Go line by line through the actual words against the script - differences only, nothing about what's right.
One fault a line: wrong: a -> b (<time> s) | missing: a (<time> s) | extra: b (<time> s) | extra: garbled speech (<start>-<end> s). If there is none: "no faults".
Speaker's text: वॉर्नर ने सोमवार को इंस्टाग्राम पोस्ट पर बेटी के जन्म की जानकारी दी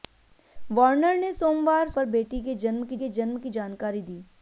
wrong: को इंस्टाग्राम पोस्ट पर बेटी -> पर बेटी के जन्म की (1.9 s)